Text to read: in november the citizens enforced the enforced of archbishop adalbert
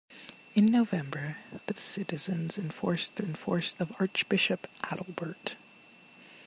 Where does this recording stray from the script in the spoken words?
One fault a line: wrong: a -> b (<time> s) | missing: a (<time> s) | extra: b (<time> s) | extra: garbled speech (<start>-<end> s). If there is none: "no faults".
no faults